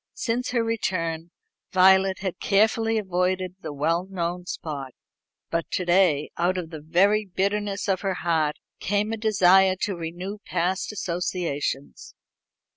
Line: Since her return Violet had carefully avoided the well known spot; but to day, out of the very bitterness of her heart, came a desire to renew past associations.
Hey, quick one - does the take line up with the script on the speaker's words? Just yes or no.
yes